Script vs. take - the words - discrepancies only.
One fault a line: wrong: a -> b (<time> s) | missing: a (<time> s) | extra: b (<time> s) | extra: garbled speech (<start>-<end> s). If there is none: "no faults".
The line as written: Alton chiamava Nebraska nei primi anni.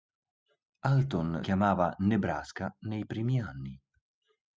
no faults